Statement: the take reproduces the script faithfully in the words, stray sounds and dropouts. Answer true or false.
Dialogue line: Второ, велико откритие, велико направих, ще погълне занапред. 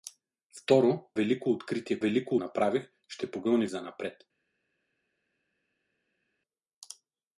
true